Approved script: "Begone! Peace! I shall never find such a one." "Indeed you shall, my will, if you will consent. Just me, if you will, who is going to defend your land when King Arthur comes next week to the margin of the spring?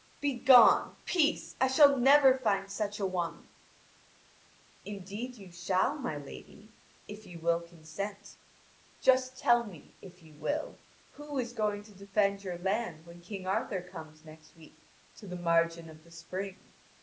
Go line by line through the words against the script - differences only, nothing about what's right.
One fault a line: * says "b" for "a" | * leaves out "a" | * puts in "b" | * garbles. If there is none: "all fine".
* says "lady" for "will"
* puts in "tell"